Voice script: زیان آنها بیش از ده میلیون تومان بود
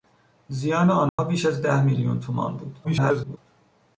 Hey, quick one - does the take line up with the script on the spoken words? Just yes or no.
no